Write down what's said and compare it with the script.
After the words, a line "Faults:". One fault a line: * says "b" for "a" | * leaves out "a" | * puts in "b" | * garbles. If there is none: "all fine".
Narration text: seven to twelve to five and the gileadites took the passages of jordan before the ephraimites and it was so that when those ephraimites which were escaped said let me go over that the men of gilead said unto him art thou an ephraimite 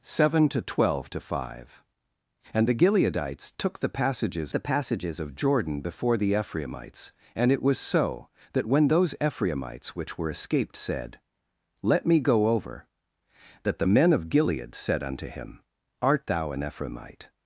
seven to twelve to five and the gileadites took the passages the passages of jordan before the ephraimites and it was so that when those ephraimites which were escaped said let me go over that the men of gilead said unto him art thou an ephraimite
Faults:
* puts in "the passages"